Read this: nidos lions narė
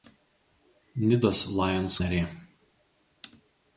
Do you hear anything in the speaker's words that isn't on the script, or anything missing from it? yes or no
no